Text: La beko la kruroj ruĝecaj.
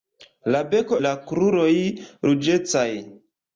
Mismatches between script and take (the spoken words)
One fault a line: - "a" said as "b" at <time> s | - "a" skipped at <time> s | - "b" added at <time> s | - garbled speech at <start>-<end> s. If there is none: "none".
none